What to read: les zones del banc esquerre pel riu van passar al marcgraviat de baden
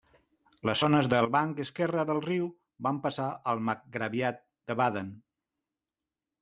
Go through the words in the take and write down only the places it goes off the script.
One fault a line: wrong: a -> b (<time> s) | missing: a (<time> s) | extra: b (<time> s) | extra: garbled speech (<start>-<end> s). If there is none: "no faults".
wrong: pel -> del (2.1 s)